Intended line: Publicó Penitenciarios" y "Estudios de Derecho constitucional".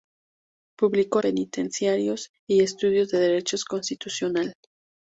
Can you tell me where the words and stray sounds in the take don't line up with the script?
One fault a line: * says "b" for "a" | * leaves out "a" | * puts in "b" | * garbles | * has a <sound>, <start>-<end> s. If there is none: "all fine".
all fine